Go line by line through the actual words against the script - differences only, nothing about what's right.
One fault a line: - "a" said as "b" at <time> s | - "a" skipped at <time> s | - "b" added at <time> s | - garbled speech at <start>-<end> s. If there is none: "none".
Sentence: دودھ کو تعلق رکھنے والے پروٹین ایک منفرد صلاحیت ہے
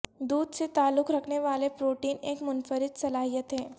- "کو" said as "سے" at 0.6 s